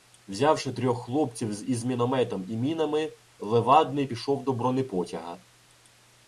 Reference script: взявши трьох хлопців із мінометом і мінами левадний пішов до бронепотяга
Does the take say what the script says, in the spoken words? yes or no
yes